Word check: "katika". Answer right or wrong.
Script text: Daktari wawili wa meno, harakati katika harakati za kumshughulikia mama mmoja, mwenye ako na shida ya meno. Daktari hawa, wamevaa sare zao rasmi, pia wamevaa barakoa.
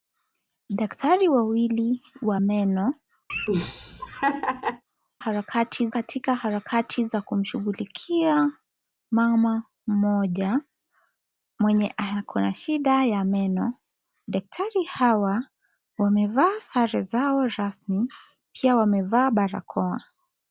right